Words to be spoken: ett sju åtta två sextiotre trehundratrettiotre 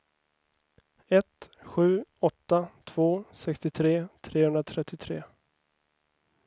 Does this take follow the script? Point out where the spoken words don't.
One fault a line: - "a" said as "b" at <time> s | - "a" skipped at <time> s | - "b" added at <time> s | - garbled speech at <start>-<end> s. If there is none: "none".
none